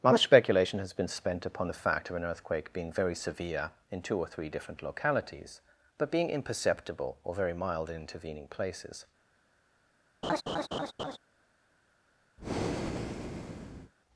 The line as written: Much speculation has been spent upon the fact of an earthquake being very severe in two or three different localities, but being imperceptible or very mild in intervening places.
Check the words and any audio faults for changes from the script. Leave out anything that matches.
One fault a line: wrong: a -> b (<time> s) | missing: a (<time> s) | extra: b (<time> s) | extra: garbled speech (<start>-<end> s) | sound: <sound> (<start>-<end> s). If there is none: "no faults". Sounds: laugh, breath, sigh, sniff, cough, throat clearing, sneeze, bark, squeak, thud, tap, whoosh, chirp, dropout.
sound: laugh (10.2-11.2 s)
sound: breath (12.4-13.9 s)